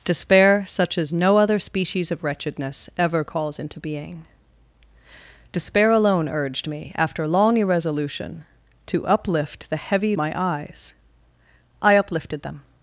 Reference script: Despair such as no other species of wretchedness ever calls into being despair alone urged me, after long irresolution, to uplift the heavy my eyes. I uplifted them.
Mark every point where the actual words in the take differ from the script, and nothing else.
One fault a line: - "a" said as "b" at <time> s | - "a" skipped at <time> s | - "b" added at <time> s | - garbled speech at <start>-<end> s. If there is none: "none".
none